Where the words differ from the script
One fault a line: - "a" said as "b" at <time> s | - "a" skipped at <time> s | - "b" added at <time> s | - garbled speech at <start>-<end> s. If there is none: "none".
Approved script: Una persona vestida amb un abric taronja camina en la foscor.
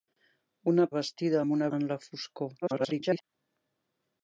- "persona" skipped at 0.8 s
- "abric taronja camina" skipped at 1.7 s
- garbled speech at 2.6-3.2 s